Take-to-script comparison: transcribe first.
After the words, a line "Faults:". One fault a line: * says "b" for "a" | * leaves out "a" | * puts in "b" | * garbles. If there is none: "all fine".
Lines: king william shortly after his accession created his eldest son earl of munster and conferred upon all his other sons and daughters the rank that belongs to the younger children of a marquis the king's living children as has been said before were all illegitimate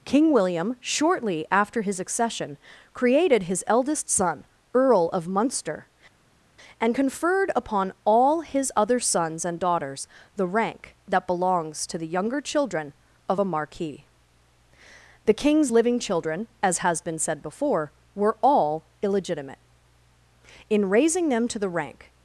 king william shortly after his accession created his eldest son earl of munster and conferred upon all his other sons and daughters the rank that belongs to the younger children of a marquis the king's living children as has been said before were all illegitimate in raising them to the rank
Faults:
* puts in "in raising them to the rank"